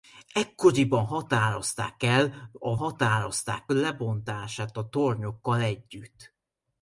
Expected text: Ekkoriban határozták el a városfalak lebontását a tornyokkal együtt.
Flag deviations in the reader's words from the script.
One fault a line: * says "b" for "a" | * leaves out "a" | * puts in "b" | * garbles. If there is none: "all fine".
* says "határozták" for "városfalak"